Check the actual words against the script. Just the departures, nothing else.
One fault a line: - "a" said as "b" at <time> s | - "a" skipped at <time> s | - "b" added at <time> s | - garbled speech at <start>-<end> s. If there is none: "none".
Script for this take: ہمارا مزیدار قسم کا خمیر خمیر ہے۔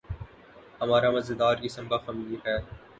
- "خمیر" skipped at 2.4 s